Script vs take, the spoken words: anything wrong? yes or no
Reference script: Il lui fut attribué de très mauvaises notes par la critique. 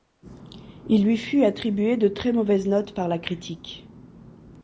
no